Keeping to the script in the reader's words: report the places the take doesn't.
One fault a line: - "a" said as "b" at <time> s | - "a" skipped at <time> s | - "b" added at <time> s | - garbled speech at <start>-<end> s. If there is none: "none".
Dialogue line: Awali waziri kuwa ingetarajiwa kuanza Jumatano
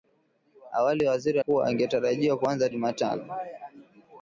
none